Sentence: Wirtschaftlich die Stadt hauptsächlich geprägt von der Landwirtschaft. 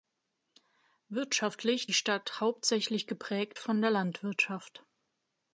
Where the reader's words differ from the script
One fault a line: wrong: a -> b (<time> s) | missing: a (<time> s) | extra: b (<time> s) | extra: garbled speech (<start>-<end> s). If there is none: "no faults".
no faults